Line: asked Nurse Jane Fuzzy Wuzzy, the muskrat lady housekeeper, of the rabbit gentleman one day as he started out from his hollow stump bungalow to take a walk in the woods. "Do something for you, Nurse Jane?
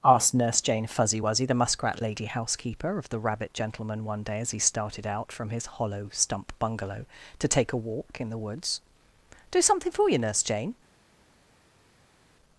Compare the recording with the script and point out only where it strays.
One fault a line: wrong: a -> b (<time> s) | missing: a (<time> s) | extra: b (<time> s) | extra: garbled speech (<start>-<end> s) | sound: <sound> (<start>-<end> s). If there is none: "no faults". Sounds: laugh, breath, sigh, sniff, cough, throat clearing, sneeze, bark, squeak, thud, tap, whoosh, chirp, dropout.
no faults